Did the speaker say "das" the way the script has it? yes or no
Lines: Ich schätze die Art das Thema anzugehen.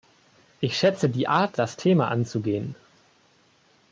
yes